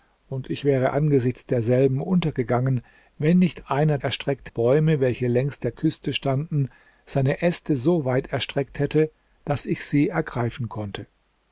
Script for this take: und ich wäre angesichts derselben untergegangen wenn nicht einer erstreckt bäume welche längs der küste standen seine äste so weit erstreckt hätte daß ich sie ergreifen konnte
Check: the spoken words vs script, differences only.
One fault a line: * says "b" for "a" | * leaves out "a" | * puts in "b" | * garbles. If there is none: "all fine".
all fine